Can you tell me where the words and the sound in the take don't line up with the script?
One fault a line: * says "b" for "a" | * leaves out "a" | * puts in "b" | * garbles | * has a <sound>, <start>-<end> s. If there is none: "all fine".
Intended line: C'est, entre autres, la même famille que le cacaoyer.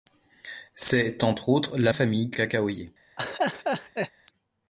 * leaves out "même"
* leaves out "le"
* has a laugh, 3.2-4.1 s